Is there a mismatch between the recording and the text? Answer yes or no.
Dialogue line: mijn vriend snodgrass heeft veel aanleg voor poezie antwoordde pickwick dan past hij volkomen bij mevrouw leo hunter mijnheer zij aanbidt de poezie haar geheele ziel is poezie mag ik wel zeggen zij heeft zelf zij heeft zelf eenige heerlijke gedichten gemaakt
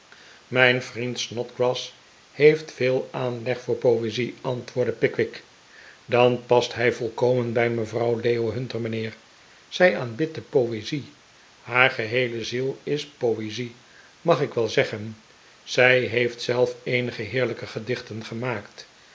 yes